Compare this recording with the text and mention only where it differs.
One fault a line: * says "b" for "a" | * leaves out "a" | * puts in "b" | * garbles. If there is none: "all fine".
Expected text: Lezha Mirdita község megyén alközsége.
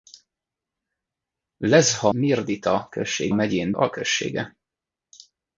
all fine